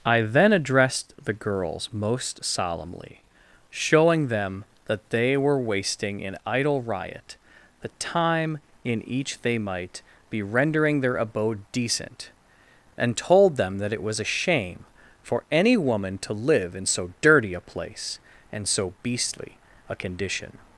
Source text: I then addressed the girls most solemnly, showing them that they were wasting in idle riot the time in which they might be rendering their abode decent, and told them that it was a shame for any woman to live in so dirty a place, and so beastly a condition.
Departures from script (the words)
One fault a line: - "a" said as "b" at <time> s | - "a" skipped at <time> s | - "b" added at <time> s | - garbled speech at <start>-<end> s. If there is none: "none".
- "which" said as "each" at 9.1 s